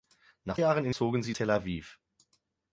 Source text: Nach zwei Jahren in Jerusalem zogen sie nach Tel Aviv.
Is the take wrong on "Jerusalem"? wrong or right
wrong